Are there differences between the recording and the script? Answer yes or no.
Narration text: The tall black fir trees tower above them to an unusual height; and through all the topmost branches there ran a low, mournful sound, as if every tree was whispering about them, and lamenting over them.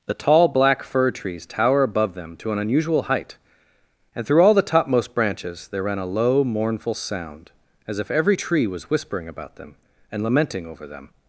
no